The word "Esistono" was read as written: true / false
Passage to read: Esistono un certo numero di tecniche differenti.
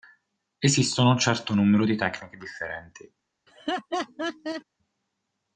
true